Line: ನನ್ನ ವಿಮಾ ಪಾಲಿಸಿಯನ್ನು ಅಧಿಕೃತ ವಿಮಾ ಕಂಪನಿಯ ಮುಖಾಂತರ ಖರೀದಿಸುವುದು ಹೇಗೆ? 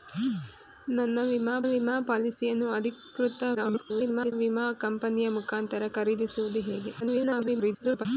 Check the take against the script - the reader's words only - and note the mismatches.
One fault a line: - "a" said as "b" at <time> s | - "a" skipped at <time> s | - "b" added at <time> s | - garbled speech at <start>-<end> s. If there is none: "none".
- "ವಿಮಾ" added at 1.6 s
- garbled speech at 3.5-4.3 s
- garbled speech at 7.0-8.1 s